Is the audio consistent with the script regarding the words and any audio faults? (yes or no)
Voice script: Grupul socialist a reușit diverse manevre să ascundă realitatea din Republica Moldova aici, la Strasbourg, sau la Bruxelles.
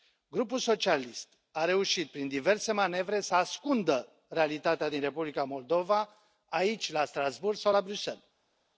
no